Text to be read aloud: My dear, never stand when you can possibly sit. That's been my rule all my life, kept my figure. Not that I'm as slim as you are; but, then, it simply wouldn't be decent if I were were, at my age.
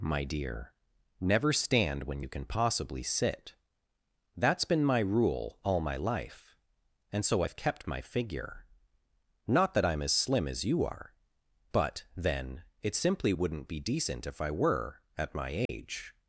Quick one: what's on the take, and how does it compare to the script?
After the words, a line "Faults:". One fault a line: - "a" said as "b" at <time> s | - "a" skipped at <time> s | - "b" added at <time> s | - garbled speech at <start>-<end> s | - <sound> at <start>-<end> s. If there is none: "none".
My dear, never stand when you can possibly sit. That's been my rule all my life, and so I've kept my figure. Not that I'm as slim as you are; but, then, it simply wouldn't be decent if I were, at my age.
Faults:
- "and so I've" added at 7.1 s
- "were" skipped at 15.0 s
- dropout at 15.7-15.7 s